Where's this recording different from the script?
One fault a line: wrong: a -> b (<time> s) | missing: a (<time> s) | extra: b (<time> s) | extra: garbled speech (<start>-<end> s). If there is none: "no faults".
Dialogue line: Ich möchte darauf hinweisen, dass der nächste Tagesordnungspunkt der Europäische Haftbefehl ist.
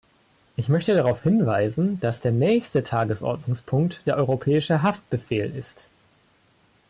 no faults